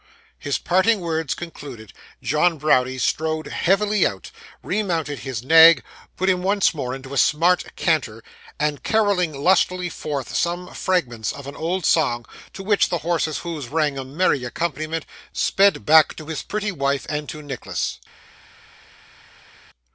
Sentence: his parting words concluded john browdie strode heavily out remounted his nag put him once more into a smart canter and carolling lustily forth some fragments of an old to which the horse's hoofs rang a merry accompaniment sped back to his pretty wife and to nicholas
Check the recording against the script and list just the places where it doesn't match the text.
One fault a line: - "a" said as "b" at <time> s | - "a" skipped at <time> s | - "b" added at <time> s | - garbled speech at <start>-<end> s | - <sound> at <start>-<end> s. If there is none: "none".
- "song" added at 11.8 s